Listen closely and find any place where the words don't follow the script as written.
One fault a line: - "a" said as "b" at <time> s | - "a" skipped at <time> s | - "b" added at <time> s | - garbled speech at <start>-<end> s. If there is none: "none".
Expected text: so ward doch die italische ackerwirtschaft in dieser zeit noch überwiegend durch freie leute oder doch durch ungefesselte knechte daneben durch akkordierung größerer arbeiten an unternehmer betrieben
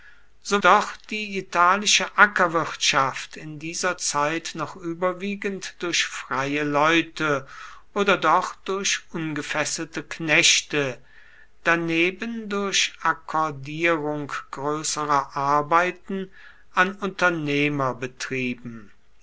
- "ward" skipped at 0.6 s